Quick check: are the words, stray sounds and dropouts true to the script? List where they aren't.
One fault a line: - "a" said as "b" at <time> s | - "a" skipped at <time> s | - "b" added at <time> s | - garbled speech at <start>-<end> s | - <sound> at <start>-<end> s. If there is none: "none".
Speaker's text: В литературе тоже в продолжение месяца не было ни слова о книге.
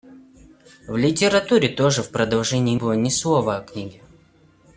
- "месяца не" skipped at 2.8 s